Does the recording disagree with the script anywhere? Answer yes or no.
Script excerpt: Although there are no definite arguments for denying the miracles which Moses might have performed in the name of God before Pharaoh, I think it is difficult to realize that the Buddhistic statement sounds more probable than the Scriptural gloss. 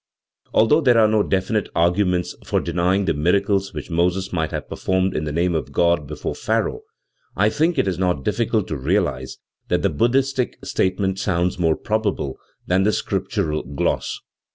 yes